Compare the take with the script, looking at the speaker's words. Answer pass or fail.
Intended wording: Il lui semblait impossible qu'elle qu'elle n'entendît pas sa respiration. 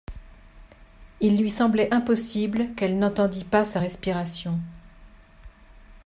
fail